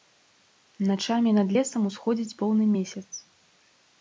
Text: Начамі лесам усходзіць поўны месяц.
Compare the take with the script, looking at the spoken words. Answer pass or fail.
fail